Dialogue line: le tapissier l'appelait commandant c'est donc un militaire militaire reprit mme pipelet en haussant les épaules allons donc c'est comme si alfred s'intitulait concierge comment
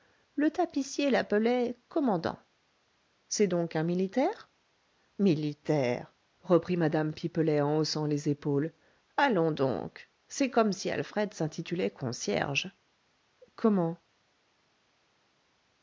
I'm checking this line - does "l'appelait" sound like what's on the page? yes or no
yes